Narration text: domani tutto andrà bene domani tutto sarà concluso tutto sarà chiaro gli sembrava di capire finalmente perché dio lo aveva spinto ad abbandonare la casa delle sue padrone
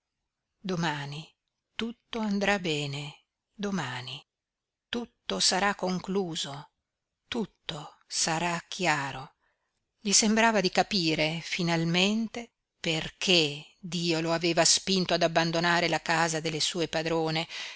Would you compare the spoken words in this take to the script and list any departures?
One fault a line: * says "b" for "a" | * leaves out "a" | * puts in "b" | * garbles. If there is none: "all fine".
all fine